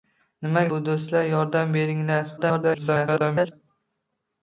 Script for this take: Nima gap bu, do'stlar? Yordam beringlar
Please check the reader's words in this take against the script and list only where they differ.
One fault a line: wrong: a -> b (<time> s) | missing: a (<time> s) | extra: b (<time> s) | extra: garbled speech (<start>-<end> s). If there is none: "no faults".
missing: gap (0.6 s)
extra: garbled speech (2.4-3.5 s)